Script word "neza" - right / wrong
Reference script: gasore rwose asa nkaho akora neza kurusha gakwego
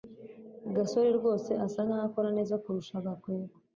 right